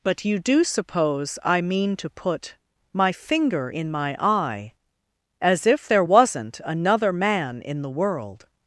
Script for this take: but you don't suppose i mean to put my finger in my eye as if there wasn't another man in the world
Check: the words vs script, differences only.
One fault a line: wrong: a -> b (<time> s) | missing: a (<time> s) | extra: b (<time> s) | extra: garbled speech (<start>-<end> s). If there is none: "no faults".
wrong: don't -> do (0.4 s)